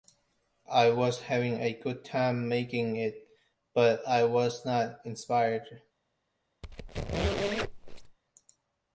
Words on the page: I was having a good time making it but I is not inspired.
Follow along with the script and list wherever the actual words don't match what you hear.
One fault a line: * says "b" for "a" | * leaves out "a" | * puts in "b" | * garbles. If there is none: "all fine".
* says "was" for "is"